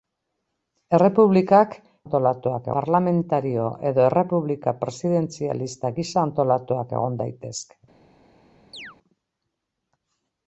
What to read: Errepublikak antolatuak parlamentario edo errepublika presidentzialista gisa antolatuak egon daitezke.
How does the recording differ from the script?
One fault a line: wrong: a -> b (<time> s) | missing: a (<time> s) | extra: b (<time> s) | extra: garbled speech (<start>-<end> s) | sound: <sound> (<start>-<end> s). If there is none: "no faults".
sound: chirp (8.7-9.0 s)